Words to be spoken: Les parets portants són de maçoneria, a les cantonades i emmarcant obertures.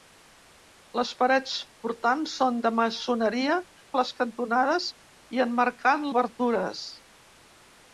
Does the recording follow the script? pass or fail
pass